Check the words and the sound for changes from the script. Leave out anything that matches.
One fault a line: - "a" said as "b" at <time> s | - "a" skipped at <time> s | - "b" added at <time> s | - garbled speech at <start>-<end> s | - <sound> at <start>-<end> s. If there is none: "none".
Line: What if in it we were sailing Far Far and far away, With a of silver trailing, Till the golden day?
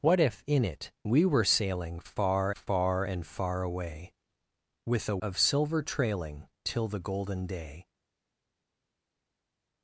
none